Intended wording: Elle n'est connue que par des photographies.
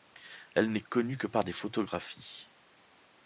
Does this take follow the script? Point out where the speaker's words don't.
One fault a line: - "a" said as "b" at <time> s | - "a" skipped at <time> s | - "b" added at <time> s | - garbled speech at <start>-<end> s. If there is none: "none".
none